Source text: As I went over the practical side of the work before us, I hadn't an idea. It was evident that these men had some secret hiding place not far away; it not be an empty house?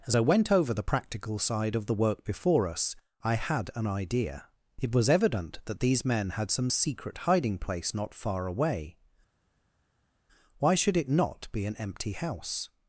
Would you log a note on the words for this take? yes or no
yes